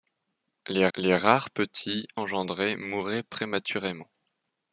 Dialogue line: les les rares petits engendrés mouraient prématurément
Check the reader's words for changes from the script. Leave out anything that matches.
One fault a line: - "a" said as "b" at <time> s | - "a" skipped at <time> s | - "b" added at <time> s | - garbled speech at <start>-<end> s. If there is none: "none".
none